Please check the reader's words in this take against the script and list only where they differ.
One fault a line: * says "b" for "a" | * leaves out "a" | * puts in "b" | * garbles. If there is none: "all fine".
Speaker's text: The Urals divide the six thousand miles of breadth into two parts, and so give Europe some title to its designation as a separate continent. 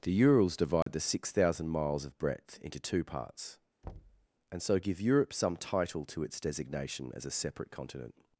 all fine